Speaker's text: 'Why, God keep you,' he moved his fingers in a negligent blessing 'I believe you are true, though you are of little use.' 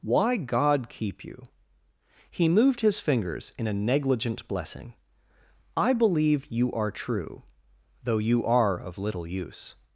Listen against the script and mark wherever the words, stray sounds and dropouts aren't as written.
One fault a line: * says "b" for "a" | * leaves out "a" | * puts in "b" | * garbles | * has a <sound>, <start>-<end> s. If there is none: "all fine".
all fine